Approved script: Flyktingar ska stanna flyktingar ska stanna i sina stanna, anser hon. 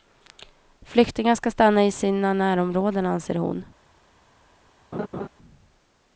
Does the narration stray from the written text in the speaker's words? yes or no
yes